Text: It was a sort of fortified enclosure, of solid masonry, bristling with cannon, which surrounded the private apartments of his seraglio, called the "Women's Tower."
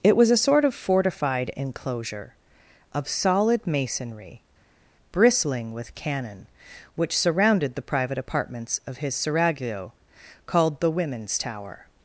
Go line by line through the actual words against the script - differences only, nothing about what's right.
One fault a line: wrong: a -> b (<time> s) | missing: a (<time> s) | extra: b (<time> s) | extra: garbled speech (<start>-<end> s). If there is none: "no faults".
no faults